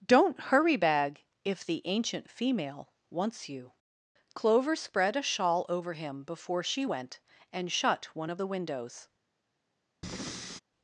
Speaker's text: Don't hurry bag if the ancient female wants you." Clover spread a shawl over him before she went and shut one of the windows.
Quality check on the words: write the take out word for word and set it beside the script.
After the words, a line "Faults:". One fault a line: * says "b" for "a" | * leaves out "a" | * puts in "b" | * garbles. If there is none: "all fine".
Don't hurry bag if the ancient female wants you." Clover spread a shawl over him before she went and shut one of the windows.
Faults:
all fine